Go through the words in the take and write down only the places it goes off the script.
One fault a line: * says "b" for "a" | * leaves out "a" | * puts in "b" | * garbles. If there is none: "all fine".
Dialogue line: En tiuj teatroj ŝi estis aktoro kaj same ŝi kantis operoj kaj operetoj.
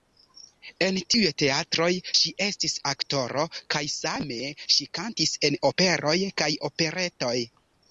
* puts in "en"